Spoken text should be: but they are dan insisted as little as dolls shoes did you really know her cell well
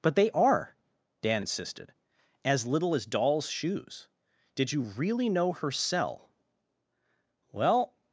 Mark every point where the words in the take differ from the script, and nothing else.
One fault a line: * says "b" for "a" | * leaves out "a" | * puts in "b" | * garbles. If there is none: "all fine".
all fine